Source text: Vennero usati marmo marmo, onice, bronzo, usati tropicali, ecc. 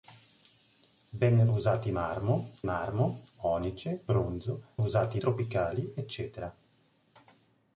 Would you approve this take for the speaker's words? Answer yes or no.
yes